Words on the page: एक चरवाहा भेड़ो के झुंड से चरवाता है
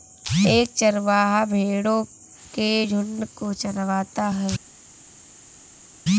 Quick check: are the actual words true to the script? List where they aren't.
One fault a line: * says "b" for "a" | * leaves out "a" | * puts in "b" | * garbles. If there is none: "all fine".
* says "को" for "से"